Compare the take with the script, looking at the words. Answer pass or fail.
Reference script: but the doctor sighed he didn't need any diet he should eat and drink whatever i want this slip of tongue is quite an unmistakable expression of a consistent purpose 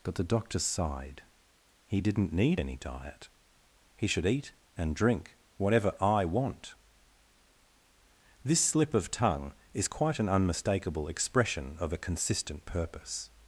pass